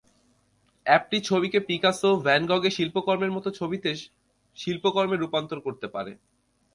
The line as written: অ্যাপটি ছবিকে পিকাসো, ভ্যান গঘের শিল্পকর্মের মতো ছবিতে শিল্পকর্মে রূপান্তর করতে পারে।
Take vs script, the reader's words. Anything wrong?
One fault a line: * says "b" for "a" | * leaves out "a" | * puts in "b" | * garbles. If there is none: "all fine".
all fine